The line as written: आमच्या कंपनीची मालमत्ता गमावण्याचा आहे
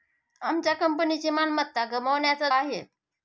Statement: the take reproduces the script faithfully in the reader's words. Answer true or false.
true